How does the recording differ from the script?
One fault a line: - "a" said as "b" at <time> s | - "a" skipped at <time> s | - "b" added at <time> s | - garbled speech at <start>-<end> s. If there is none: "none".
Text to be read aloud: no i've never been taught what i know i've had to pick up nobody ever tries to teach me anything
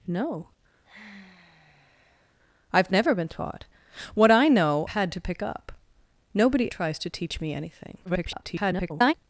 - "i've" skipped at 4.9 s
- "ever" skipped at 6.7 s
- garbled speech at 8.1-9.1 s